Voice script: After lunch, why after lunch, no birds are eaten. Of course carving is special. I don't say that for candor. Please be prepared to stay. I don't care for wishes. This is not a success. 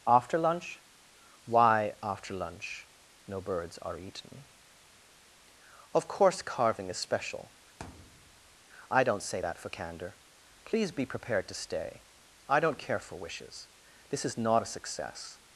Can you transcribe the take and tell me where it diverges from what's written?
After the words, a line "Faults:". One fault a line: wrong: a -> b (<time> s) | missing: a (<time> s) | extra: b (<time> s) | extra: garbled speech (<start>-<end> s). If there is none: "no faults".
After lunch, why after lunch, no birds are eaten. Of course carving is special. I don't say that for candor. Please be prepared to stay. I don't care for wishes. This is not a success.
Faults:
no faults